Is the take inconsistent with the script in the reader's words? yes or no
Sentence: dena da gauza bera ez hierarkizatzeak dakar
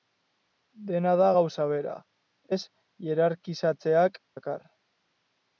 no